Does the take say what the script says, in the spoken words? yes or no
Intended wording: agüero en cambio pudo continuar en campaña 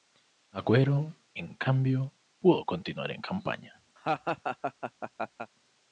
yes